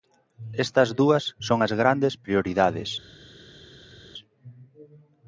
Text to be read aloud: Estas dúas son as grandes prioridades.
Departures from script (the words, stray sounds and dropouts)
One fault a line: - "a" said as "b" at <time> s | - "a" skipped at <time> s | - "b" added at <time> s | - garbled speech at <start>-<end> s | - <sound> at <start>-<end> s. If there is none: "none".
none